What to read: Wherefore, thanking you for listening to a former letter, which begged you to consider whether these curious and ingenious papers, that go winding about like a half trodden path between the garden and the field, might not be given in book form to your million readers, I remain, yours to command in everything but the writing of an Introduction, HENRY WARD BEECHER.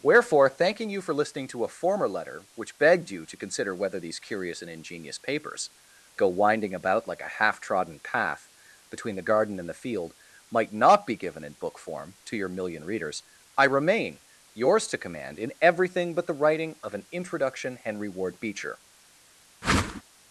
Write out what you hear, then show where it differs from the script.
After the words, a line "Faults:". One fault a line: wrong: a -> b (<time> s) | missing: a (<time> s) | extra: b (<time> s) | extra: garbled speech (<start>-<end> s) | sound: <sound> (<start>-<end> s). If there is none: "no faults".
Wherefore, thanking you for listening to a former letter, which begged you to consider whether these curious and ingenious papers, go winding about like a half trodden path between the garden and the field, might not be given in book form to your million readers, I remain, yours to command in everything but the writing of an Introduction, HENRY WARD BEECHER.
Faults:
missing: that (5.7 s)
sound: whoosh (19.6-20.0 s)